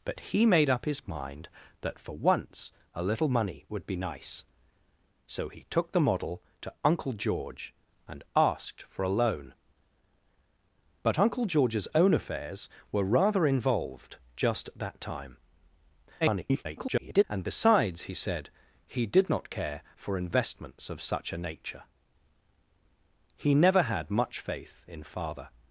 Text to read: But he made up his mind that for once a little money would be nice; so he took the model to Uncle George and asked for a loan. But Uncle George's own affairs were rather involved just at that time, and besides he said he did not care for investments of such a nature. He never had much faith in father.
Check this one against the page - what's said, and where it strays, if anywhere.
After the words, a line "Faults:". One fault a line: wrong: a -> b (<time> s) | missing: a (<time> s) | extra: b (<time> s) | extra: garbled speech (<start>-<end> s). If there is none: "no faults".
But he made up his mind that for once a little money would be nice; so he took the model to Uncle George and asked for a loan. But Uncle George's own affairs were rather involved just at that time, [garbled] and besides he said he did not care for investments of such a nature. He never had much faith in father.
Faults:
extra: garbled speech (16.2-17.2 s)